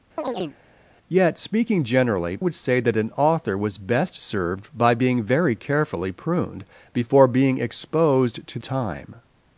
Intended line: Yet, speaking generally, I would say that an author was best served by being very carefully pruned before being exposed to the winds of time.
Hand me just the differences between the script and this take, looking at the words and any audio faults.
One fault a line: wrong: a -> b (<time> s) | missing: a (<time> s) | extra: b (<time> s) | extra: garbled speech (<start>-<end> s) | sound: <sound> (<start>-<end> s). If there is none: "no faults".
sound: chirp (0.2-0.6 s)
missing: I (2.4 s)
missing: the winds of (8.6 s)